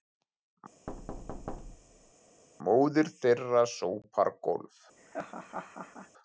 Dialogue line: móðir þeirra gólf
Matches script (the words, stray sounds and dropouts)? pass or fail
fail